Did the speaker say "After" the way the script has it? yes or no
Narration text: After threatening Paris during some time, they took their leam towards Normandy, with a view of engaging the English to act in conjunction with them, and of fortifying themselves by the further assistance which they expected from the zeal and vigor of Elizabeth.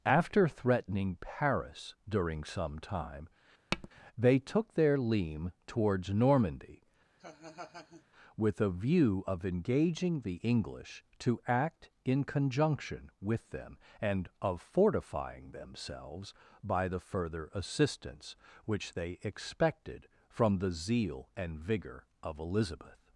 yes